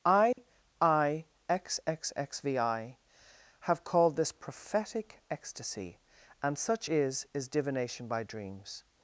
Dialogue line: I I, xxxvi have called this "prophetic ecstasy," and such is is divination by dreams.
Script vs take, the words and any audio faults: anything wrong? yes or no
yes